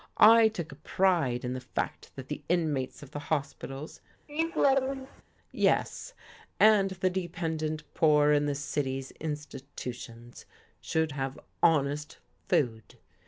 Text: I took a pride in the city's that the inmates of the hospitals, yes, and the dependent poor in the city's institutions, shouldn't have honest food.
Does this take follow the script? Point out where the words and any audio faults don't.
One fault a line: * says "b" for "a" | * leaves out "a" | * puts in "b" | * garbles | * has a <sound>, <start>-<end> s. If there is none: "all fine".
* says "fact" for "city's"
* has a laugh, 4.3-5.2 s
* says "should" for "shouldn't"